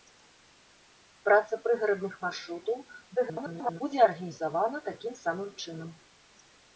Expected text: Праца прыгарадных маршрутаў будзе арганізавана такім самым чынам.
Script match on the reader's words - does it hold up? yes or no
no